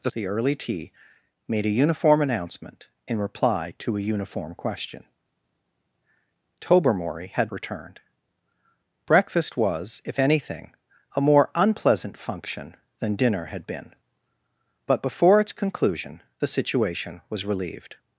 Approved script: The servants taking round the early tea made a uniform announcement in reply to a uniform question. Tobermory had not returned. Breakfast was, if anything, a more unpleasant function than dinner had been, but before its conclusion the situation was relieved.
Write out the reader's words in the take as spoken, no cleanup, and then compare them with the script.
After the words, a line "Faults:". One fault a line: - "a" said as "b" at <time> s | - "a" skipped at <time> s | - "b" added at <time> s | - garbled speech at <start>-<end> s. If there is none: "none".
The the early tea made a uniform announcement in reply to a uniform question. Tobermory had returned. Breakfast was, if anything, a more unpleasant function than dinner had been, but before its conclusion the situation was relieved.
Faults:
- "servants taking round" skipped at 0.1 s
- "not" skipped at 7.5 s